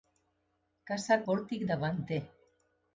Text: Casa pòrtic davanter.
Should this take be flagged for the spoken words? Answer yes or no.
no